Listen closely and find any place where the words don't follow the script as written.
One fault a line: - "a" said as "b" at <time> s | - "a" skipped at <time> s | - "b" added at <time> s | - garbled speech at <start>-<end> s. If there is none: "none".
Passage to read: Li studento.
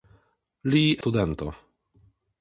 none